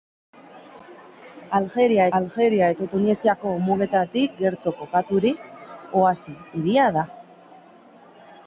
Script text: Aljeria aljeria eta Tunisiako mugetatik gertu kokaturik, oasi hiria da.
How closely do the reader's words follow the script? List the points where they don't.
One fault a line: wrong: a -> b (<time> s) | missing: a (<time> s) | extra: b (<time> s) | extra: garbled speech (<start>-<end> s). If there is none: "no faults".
no faults